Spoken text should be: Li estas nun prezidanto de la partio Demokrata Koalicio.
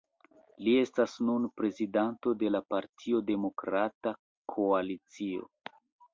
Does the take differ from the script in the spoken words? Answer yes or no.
no